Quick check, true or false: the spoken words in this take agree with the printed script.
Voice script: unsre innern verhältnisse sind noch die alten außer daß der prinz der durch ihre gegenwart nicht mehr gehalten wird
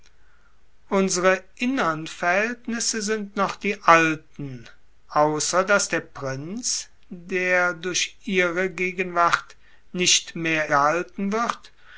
true